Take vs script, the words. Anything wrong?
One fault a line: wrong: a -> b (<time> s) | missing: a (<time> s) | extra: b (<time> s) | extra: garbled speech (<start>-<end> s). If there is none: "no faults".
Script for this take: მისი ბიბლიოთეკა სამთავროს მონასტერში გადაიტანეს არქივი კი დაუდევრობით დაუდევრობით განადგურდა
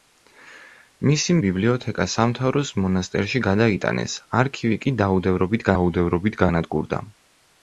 no faults